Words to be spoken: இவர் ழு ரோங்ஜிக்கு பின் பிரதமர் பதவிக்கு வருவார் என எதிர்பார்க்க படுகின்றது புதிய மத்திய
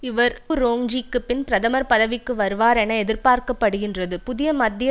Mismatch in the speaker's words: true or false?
true